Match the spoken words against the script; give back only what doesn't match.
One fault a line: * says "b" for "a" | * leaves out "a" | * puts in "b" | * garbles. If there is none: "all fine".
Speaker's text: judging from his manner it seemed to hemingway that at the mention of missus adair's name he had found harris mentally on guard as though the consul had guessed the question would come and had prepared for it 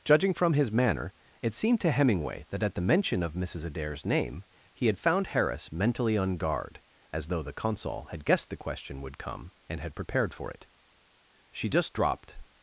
* puts in "she just dropped"